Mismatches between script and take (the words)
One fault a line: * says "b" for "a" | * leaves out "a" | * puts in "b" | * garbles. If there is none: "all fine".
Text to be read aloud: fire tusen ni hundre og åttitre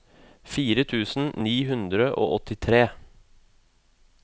all fine